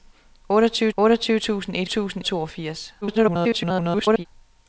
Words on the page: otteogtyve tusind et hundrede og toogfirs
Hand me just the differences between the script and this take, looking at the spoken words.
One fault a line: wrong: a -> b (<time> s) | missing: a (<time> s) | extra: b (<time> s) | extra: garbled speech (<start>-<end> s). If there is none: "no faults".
extra: otteogtyve (1.0 s)
wrong: hundrede -> tusind (1.9 s)
extra: garbled speech (3.0-4.3 s)